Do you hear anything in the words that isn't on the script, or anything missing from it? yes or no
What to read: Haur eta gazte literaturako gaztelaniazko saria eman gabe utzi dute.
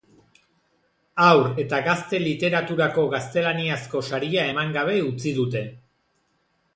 no